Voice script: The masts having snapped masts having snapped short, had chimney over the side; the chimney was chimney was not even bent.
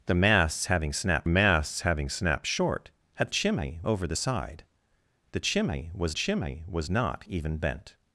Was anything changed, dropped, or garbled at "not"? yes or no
no